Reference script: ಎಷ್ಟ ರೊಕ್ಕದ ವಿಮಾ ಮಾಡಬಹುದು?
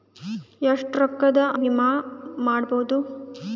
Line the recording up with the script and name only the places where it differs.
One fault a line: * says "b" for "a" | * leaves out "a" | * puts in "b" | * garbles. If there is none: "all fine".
all fine